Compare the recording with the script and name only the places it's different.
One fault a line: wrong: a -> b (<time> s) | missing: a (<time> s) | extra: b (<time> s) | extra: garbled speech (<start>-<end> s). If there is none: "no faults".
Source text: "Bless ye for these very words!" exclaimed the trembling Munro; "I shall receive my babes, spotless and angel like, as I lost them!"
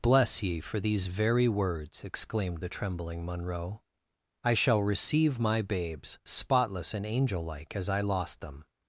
no faults